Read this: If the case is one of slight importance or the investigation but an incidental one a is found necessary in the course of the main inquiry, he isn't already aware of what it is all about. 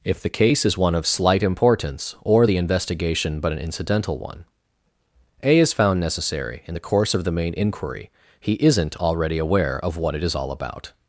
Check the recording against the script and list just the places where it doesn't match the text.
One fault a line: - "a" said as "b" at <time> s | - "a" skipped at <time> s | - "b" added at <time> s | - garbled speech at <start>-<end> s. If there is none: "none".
none